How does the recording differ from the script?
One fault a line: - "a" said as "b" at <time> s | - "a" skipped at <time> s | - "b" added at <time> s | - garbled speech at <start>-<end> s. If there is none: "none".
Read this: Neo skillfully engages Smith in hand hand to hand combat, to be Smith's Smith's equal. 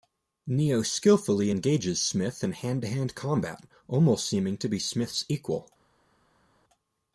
- "hand" skipped at 2.8 s
- "almost seeming" added at 3.9 s
- "Smith's" skipped at 5.2 s